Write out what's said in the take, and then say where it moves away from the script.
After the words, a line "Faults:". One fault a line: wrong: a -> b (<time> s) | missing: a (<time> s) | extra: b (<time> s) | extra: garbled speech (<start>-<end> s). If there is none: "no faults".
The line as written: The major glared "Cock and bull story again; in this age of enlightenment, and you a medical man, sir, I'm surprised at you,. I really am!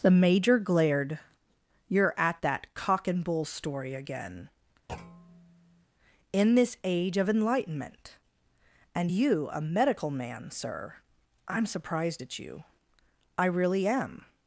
The major glared "You're at that cock and bull story again; in this age of enlightenment, and you a medical man, sir, I'm surprised at you,. I really am!
Faults:
extra: You're at that (1.9 s)